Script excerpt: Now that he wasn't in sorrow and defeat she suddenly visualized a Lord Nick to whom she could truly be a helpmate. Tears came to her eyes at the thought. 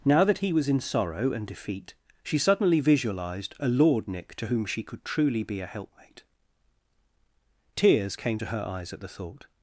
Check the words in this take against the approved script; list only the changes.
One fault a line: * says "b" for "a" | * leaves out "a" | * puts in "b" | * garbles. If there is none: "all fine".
* says "was" for "wasn't"